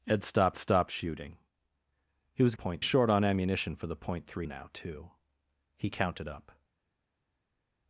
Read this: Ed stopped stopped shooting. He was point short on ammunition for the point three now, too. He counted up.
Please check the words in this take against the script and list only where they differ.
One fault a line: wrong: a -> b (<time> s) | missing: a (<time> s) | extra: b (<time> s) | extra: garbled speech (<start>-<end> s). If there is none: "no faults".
no faults